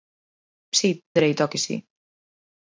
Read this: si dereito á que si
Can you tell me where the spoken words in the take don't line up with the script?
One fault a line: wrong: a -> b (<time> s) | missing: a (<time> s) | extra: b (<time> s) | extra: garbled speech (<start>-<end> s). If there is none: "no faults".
no faults